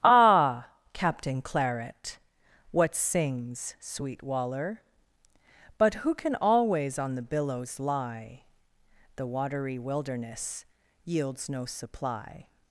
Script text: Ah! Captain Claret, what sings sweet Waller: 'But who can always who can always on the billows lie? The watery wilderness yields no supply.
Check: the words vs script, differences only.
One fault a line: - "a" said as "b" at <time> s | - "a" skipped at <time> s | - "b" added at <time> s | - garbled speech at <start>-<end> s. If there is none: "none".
- "who can always" skipped at 7.0 s